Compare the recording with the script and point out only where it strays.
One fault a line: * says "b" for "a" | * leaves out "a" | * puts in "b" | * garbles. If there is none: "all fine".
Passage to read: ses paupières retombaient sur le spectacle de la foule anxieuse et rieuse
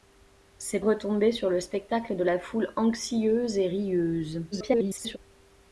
* leaves out "paupières"
* garbles